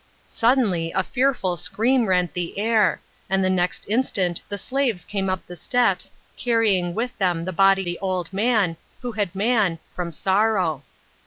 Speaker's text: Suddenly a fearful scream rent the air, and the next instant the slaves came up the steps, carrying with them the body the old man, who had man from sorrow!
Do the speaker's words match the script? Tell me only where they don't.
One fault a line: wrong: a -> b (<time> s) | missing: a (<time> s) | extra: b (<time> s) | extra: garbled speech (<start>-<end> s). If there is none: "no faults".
no faults